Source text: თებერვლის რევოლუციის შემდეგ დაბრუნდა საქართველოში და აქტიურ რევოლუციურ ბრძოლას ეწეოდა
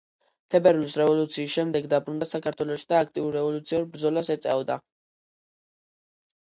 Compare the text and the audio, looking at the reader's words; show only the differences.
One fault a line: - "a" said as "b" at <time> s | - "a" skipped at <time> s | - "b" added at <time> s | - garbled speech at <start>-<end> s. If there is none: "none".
none